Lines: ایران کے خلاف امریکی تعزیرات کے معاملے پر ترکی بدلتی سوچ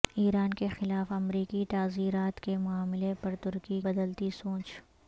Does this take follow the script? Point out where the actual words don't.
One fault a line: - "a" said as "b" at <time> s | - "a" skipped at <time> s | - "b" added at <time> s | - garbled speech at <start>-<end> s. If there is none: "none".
none